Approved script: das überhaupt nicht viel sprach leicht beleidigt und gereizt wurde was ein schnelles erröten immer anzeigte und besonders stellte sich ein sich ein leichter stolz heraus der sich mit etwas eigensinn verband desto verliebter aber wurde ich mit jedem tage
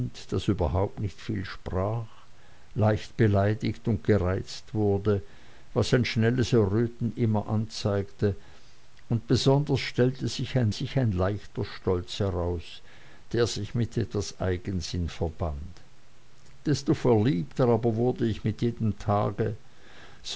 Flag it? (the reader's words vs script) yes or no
no